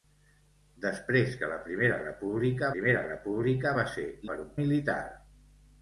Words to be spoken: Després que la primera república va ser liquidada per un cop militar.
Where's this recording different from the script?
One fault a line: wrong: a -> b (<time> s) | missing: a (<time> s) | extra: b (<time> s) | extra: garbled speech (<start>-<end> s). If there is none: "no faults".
extra: primera república (2.7 s)
missing: liquidada (4.1 s)
missing: cop (4.5 s)